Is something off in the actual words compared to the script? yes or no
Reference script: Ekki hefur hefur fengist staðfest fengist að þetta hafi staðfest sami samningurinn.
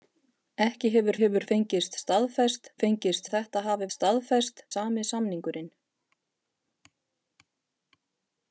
no